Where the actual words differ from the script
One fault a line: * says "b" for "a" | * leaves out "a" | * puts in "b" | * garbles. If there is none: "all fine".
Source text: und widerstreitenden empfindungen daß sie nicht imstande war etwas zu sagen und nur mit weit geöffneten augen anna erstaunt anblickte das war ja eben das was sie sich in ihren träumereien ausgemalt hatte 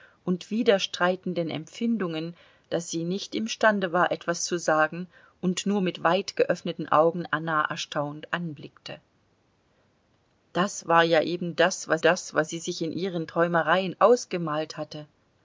* puts in "das was"